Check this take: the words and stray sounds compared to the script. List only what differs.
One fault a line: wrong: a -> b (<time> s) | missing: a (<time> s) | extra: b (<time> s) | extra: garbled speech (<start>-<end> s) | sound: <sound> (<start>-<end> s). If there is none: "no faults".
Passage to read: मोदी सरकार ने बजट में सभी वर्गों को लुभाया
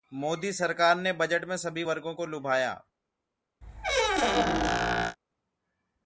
sound: squeak (3.6-5.2 s)